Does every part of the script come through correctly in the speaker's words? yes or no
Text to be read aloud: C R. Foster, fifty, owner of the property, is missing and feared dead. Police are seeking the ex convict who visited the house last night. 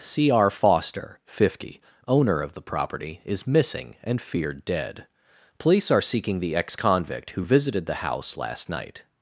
yes